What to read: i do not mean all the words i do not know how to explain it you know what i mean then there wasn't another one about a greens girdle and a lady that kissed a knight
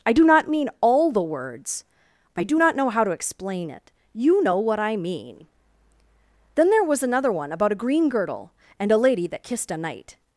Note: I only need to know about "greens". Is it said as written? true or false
false